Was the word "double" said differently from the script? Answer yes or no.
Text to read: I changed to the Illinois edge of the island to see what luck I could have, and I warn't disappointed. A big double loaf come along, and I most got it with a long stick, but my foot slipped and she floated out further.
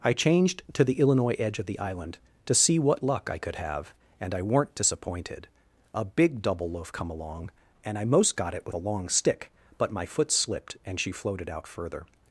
no